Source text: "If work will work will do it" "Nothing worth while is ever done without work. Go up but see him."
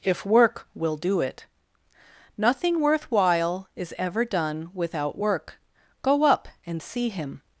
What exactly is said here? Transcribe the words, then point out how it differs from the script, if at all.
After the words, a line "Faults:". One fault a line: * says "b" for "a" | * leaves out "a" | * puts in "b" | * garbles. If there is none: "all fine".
"If work will do it" "Nothing worth while is ever done without work. Go up and see him."
Faults:
* leaves out "work will"
* says "and" for "but"